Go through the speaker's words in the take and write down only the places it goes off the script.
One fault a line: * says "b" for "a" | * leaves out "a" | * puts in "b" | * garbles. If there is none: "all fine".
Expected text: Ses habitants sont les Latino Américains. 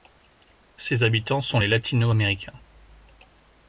all fine